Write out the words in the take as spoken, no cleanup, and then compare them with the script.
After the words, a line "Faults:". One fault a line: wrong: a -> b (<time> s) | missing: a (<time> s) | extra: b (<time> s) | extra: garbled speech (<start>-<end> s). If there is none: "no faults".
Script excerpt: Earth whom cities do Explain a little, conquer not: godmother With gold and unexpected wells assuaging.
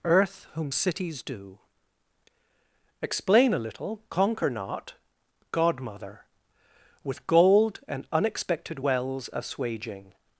Earth whom cities do Explain a little, conquer not: godmother With gold and unexpected wells assuaging.
Faults:
no faults